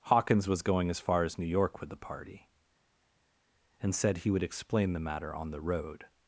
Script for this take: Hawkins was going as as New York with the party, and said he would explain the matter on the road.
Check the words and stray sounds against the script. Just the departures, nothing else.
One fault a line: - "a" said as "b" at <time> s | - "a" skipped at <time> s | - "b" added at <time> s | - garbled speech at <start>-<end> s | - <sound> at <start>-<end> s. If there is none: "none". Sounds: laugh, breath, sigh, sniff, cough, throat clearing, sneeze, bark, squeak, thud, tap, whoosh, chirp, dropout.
- "far" added at 1.0 s